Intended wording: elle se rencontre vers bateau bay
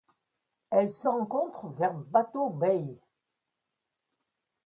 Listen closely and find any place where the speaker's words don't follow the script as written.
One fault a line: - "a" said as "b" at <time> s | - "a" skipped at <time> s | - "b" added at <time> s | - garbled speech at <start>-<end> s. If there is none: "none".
none